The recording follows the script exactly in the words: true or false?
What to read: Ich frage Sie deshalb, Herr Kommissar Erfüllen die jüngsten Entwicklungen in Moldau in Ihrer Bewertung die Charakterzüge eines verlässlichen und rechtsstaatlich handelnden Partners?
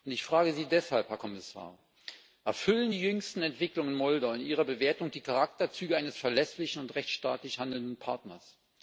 true